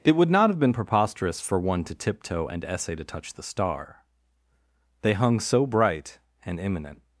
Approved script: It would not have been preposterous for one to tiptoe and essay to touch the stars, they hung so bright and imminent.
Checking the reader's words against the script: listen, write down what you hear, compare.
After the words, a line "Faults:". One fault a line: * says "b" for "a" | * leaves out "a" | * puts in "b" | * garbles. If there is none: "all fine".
It would not have been preposterous for one to tiptoe and essay to touch the star, they hung so bright and imminent.
Faults:
* says "star" for "stars"